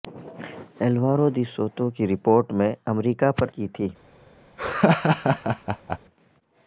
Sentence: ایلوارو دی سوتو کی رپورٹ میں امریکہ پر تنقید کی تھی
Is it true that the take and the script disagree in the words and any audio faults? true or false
true